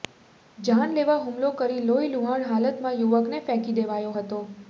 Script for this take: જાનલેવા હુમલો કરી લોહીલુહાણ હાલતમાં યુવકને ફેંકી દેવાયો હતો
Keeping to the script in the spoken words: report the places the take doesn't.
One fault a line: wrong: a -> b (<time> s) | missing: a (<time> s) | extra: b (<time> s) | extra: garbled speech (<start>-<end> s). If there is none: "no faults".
no faults